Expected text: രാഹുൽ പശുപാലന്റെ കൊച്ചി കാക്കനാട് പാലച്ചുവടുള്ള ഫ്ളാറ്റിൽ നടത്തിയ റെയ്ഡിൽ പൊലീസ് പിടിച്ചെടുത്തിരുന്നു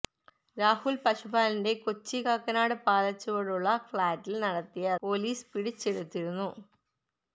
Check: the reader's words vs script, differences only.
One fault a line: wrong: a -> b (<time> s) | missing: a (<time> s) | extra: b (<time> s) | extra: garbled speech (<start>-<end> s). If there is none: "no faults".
missing: റെയ്ഡിൽ (4.9 s)